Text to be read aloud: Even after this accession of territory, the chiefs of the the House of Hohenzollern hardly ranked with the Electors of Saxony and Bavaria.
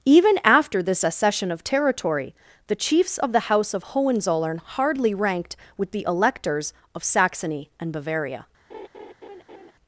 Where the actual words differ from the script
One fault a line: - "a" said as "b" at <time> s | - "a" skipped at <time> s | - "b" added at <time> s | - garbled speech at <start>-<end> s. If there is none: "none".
- "the" skipped at 3.5 s